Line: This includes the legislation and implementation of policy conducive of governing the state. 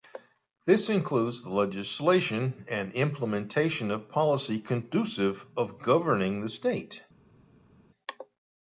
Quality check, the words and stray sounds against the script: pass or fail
pass